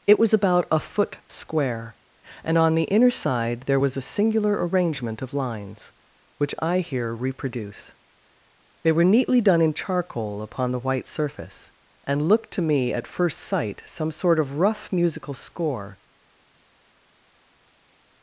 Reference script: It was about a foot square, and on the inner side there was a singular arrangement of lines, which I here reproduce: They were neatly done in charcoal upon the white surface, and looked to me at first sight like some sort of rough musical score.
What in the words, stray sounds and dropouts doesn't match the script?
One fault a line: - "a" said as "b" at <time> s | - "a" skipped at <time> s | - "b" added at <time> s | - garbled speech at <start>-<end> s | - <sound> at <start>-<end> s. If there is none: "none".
- "like" skipped at 13.8 s